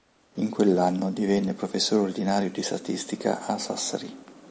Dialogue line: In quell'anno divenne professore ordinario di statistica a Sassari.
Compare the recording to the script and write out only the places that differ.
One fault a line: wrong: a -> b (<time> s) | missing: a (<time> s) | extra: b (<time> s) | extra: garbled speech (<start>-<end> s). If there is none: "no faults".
no faults